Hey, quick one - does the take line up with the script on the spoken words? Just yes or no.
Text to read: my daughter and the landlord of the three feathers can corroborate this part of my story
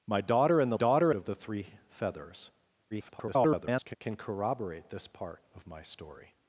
no